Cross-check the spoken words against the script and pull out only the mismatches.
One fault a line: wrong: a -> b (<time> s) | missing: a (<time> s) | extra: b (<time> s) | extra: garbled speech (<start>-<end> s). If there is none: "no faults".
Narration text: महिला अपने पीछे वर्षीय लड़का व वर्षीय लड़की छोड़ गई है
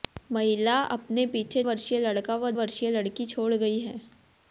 no faults